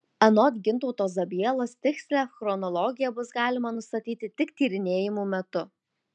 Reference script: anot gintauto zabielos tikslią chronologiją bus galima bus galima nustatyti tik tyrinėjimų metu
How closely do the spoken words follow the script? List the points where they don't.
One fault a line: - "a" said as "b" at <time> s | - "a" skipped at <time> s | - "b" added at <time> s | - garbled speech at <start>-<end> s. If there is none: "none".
- "bus galima" skipped at 3.7 s